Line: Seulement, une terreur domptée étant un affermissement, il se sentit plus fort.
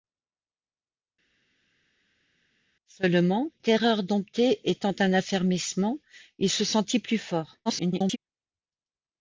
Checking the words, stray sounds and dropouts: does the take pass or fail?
fail